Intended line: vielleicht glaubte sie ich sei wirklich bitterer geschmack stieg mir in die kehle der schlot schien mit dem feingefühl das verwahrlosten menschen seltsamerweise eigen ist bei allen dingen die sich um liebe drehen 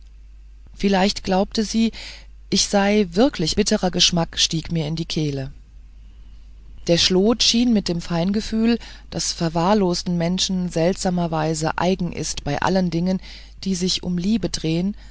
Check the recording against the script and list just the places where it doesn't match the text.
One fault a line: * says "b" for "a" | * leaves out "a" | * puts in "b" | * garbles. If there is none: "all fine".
all fine